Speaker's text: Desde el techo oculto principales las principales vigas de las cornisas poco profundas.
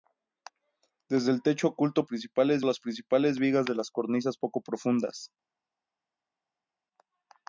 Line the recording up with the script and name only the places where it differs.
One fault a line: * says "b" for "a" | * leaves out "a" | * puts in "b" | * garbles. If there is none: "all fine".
all fine